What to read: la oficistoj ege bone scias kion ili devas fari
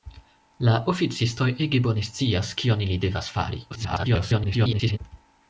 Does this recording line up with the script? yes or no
no